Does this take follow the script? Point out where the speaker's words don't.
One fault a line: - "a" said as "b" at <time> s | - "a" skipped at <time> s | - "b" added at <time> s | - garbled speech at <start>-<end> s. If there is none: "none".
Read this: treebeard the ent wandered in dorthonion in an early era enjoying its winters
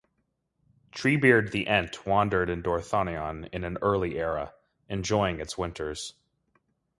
none